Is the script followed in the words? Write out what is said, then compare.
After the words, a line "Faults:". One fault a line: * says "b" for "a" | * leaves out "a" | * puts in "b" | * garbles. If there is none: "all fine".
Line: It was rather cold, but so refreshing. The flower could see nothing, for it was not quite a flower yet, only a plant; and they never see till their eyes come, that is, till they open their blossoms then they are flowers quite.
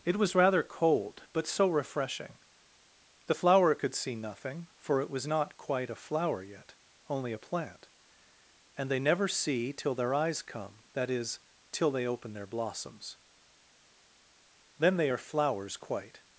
It was rather cold, but so refreshing. The flower could see nothing, for it was not quite a flower yet, only a plant; and they never see till their eyes come, that is, till they open their blossoms then they are flowers quite.
Faults:
all fine